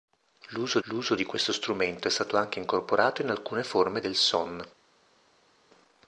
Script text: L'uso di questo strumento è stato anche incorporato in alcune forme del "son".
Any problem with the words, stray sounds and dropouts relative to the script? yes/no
yes